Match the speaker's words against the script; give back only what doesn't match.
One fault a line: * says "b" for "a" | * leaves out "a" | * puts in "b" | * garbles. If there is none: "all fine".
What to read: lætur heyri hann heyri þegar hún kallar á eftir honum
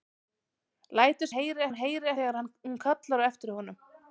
all fine